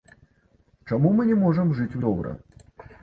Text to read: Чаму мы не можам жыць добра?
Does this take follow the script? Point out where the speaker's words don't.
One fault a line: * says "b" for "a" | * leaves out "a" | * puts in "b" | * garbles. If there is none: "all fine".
all fine